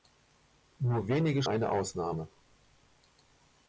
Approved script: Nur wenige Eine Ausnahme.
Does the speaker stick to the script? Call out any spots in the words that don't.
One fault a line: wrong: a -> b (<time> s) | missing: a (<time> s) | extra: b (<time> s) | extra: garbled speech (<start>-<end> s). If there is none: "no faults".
no faults